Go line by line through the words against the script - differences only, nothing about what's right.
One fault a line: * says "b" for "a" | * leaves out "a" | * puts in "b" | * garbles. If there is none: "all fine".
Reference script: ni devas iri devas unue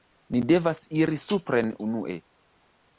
* says "supren" for "devas"